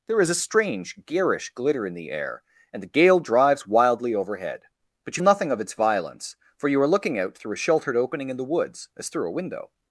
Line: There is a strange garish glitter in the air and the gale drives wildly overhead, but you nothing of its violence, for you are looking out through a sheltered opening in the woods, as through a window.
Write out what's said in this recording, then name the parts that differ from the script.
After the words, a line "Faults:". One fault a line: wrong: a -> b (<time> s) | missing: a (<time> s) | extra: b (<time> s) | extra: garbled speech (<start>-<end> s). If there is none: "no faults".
There is a strange garish glitter in the air and the gale drives wildly overhead, but you nothing of its violence, for you are looking out through a sheltered opening in the woods, as through a window.
Faults:
no faults